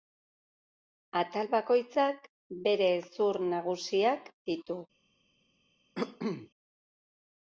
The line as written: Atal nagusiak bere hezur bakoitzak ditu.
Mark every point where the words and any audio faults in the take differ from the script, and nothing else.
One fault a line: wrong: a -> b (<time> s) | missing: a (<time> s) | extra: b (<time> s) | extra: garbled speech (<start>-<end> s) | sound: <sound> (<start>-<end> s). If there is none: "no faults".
wrong: nagusiak -> bakoitzak (1.5 s)
wrong: bakoitzak -> nagusiak (3.5 s)
sound: cough (5.9-6.5 s)